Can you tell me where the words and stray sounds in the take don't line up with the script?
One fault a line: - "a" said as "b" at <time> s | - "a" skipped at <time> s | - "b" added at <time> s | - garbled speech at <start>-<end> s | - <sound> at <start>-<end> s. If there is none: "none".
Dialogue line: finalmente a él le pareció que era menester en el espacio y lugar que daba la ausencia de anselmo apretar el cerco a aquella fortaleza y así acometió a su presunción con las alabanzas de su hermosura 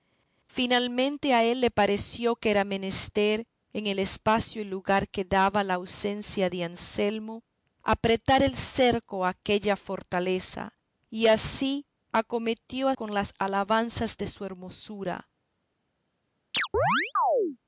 - "su presunción" skipped at 12.9 s
- chirp at 16.5-17.6 s